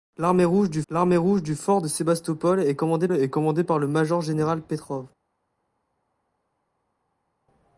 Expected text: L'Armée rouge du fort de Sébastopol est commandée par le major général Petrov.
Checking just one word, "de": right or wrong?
right